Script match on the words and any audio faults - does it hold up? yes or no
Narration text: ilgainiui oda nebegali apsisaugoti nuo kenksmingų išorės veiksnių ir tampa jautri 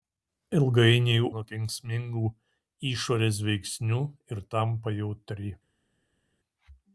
no